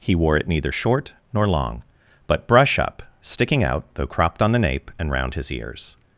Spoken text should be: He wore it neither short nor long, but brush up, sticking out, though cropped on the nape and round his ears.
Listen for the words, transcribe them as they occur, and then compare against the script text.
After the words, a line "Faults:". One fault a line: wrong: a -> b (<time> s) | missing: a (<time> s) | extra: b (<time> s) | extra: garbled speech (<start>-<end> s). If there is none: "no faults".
He wore it neither short nor long, but brush up, sticking out, though cropped on the nape and round his ears.
Faults:
no faults